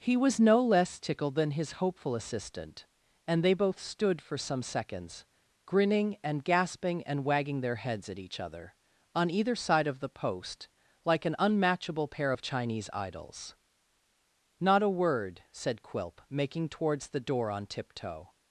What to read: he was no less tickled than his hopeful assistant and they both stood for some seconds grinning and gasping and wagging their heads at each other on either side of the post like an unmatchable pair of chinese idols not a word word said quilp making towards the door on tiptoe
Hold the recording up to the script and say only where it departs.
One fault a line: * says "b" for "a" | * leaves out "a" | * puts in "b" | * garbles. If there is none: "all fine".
* leaves out "word"